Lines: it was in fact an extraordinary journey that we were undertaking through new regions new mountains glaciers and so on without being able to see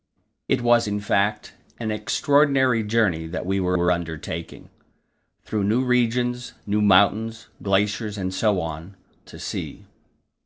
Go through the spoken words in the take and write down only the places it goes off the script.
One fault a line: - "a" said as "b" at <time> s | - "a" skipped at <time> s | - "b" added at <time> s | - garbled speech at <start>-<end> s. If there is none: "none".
- "were" added at 3.7 s
- "without being able" skipped at 8.9 s